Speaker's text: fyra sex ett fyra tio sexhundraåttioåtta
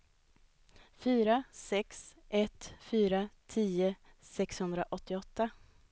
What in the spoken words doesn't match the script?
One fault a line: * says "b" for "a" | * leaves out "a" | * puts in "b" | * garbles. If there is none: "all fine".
all fine